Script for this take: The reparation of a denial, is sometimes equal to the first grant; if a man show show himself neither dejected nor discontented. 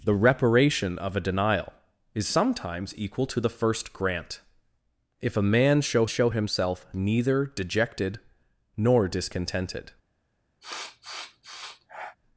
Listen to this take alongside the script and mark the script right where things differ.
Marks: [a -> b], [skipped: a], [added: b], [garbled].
The reparation of a denial, is sometimes equal to the first grant; if a man show show himself neither dejected nor discontented.